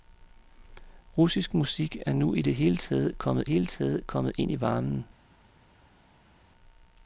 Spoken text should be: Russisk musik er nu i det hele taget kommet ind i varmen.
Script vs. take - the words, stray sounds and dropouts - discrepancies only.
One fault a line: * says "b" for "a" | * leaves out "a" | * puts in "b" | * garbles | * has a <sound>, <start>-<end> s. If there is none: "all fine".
* puts in "hele taget kommet"